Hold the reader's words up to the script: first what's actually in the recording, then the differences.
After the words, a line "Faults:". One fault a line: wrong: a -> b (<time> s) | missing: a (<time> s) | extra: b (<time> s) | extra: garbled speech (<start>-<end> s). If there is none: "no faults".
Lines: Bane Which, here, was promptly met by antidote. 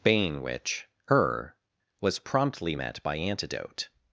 Bane Which, her, was promptly met by antidote.
Faults:
wrong: here -> her (1.1 s)